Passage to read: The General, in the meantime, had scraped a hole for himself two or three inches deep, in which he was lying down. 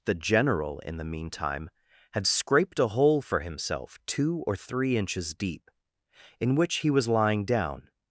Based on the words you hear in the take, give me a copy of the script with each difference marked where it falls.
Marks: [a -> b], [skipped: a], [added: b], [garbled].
The General, in the meantime, had scraped a hole for himself two or three inches deep, in which he was lying down.